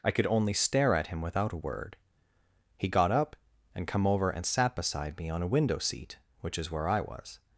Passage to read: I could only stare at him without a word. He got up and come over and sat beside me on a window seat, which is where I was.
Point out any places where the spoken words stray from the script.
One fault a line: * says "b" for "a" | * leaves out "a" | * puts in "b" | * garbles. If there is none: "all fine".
all fine